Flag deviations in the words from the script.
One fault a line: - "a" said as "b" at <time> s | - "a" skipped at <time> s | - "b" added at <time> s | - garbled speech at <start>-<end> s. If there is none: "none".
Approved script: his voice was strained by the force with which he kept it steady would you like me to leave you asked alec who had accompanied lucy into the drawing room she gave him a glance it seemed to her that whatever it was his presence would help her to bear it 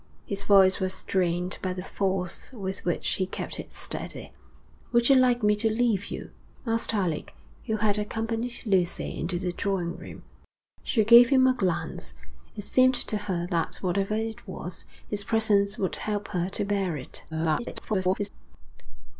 - garbled speech at 17.3-18.3 s